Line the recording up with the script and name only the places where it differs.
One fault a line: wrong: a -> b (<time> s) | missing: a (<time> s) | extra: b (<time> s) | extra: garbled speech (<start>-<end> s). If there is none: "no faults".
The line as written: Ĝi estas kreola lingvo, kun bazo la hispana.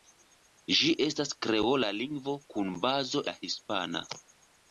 no faults